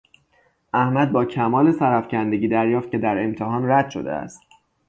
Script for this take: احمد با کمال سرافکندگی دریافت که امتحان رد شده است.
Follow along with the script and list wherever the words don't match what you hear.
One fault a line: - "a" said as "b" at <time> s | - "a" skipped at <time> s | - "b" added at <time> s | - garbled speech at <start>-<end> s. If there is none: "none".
- "در" added at 3.0 s